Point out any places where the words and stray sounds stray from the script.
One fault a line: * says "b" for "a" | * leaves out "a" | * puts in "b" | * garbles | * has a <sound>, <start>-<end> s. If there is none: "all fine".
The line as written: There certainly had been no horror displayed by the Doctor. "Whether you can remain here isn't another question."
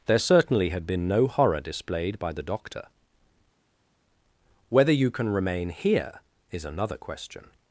* says "is" for "isn't"